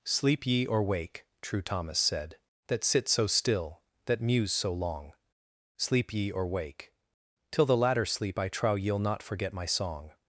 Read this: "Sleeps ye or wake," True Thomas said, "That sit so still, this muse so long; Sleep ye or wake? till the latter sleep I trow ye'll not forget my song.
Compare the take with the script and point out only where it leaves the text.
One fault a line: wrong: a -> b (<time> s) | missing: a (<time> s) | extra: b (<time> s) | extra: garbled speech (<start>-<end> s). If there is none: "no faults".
wrong: Sleeps -> Sleep (0.0 s)
wrong: this -> that (4.0 s)